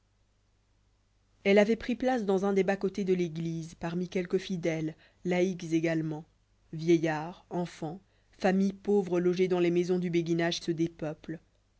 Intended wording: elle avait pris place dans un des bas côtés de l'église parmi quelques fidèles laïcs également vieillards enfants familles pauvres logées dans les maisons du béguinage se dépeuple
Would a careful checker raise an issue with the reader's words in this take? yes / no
no